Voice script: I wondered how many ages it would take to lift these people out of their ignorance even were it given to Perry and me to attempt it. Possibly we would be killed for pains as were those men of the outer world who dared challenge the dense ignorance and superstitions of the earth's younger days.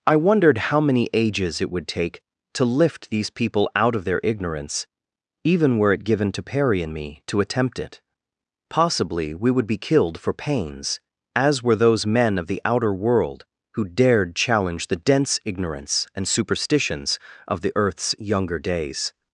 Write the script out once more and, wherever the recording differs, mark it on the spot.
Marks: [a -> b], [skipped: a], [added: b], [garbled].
I wondered how many ages it would take to lift these people out of their ignorance even were it given to Perry and me to attempt it. Possibly we would be killed for pains as were those men of the outer world who dared challenge the dense ignorance and superstitions of the earth's younger days.